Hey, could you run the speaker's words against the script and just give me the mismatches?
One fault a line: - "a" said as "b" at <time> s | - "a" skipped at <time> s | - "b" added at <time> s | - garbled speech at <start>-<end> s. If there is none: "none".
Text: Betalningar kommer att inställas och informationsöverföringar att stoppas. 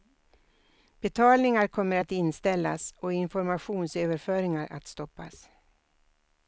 none